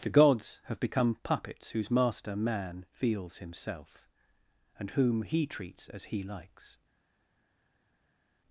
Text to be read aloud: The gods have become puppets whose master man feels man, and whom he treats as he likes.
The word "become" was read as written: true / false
true